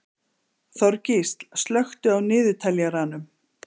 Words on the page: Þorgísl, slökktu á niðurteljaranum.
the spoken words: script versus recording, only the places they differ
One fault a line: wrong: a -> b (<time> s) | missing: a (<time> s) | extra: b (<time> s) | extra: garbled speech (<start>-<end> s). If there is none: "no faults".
no faults